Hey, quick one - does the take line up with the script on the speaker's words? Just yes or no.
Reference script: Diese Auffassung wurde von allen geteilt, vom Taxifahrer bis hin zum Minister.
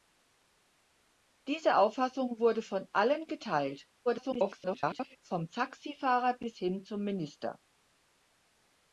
no